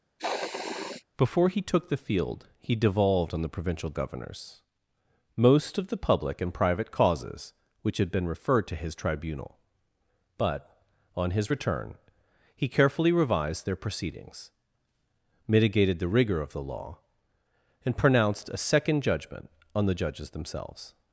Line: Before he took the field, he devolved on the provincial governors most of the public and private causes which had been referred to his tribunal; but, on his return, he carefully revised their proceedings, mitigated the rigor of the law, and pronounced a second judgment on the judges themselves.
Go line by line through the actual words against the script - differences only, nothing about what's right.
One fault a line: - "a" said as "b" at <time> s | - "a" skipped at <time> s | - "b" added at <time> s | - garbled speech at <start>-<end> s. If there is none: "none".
none